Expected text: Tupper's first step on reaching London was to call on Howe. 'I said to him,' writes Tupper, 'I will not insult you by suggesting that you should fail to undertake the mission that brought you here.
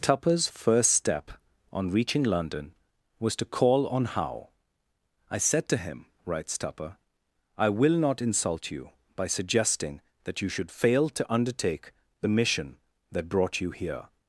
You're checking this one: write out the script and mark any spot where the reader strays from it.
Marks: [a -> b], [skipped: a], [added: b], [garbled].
Tupper's first step on reaching London was to call on Howe. 'I said to him,' writes Tupper, 'I will not insult you by suggesting that you should fail to undertake the mission that brought you here.